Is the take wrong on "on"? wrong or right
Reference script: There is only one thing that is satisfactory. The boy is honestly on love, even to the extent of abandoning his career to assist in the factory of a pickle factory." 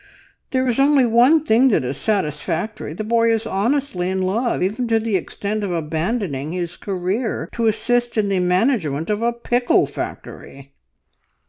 wrong